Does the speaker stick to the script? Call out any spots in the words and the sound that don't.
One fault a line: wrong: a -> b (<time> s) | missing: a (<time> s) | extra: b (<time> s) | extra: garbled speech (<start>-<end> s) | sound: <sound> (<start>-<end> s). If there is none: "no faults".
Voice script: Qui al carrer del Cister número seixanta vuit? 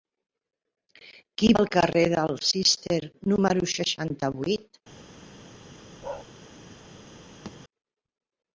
sound: bark (6.0-6.3 s)
sound: thud (7.5-7.6 s)